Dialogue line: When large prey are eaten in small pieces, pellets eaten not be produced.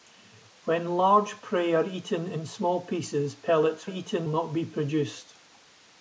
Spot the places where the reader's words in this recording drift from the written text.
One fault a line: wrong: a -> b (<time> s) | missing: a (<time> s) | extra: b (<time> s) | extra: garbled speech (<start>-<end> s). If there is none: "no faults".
no faults